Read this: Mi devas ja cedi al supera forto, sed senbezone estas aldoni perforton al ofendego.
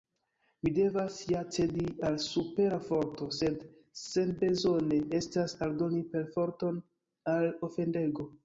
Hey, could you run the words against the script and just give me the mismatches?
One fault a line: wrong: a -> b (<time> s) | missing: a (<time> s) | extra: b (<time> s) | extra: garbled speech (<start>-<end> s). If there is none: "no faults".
no faults